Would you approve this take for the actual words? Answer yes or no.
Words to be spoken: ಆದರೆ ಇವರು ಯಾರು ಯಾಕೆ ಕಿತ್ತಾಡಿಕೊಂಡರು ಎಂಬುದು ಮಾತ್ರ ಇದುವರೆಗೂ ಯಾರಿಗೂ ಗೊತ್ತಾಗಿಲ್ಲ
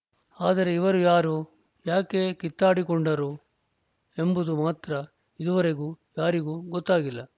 yes